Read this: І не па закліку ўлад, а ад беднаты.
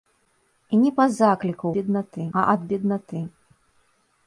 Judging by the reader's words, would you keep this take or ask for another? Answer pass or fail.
fail